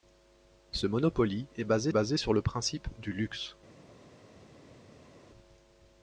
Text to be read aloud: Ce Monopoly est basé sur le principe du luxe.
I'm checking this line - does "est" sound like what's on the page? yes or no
yes